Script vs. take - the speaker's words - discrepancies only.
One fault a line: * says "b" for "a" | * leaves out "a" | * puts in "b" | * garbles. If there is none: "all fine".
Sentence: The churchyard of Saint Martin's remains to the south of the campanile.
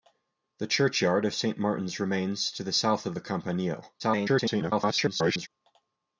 * garbles